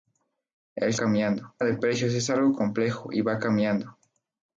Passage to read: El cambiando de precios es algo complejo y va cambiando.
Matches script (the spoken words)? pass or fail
pass